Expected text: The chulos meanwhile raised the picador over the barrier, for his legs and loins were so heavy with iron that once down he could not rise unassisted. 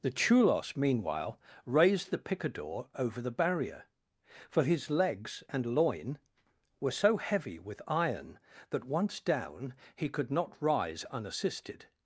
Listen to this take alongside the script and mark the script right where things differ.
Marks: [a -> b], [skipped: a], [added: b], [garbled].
The chulos meanwhile raised the picador over the barrier, for his legs and [loins -> loin] were so heavy with iron that once down he could not rise unassisted.